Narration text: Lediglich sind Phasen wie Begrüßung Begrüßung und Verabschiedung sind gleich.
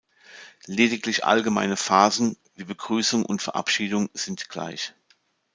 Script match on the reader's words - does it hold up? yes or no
no